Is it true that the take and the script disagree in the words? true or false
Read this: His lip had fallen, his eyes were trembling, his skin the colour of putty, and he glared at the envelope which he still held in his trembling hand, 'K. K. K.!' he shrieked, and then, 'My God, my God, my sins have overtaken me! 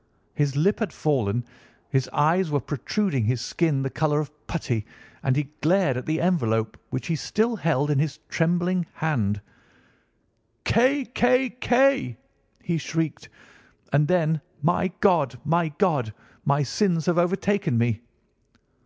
true